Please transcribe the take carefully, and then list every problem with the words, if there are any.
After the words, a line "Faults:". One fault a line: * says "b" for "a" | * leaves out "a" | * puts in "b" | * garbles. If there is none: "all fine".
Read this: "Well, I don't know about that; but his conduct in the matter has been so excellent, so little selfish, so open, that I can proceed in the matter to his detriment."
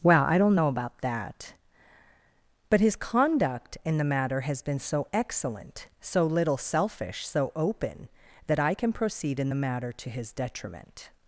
"Well, I don't know about that; but his conduct in the matter has been so excellent, so little selfish, so open, that I can proceed in the matter to his detriment."
Faults:
all fine